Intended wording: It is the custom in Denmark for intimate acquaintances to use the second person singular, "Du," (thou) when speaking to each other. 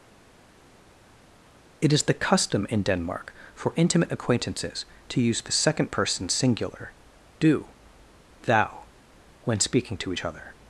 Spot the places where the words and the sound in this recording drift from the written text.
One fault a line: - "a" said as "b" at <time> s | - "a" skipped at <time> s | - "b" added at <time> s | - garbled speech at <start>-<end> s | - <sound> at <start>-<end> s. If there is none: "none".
none